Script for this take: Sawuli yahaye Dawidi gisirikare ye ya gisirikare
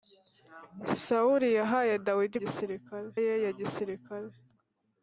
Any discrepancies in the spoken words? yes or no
no